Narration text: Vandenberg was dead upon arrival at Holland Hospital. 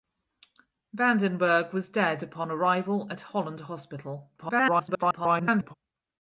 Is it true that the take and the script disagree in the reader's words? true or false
true